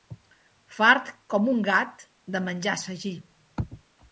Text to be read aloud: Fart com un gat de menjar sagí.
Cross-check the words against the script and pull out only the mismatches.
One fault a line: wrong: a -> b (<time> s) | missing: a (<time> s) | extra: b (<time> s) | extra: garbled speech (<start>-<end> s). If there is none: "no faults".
no faults